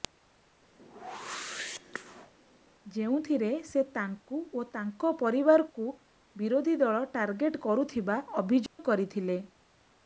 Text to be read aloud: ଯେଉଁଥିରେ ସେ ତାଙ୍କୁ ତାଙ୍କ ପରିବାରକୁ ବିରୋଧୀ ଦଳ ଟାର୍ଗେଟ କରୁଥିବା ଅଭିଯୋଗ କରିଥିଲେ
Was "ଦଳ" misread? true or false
false